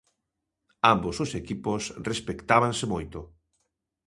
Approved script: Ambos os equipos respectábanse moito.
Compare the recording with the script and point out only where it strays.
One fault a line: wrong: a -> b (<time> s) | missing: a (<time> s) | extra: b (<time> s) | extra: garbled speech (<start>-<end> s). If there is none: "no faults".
no faults